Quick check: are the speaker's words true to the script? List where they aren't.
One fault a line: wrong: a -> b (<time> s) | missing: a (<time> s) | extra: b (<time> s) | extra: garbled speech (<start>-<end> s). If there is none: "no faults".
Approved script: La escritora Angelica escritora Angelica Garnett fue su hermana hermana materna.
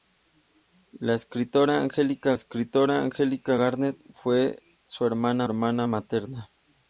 no faults